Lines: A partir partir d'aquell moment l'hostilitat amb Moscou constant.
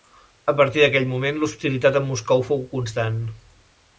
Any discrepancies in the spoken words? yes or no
yes